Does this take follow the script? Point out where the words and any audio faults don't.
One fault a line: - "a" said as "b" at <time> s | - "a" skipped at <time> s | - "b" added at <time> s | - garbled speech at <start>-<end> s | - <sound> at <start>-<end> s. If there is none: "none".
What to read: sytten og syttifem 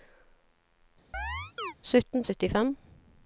- chirp at 1.1-1.7 s